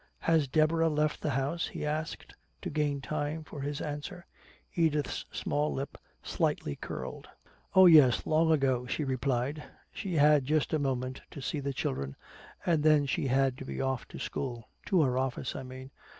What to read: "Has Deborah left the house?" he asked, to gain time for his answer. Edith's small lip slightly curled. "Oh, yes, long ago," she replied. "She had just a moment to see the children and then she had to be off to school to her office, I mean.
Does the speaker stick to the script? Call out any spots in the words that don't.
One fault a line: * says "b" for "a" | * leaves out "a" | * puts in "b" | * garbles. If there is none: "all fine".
all fine